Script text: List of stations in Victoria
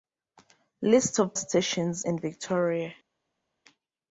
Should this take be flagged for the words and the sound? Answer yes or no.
no